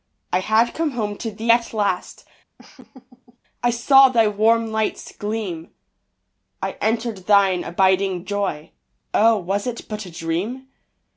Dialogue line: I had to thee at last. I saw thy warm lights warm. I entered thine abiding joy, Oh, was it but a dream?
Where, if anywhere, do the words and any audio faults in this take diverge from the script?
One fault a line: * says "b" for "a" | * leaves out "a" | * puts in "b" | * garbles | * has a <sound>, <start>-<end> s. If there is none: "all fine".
* puts in "come home"
* has a laugh, 2.6-3.4 s
* says "gleam" for "warm"